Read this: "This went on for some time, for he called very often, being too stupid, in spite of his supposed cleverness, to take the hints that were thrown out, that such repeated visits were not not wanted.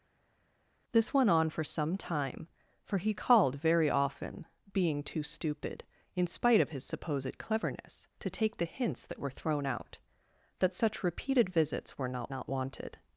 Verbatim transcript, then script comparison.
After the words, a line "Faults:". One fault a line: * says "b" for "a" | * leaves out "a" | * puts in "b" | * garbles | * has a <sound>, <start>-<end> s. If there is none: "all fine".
"This went on for some time, for he called very often, being too stupid, in spite of his supposed cleverness, to take the hints that were thrown out, that such repeated visits were not not wanted.
Faults:
all fine